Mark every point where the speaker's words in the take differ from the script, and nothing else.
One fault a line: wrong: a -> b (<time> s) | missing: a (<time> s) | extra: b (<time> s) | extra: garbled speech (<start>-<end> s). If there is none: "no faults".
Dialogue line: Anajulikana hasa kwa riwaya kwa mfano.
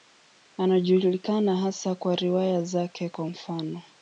extra: zake (2.6 s)